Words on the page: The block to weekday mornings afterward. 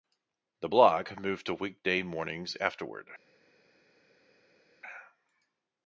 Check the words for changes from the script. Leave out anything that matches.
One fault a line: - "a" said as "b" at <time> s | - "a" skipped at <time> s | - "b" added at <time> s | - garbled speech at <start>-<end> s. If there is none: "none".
- "moved" added at 1.2 s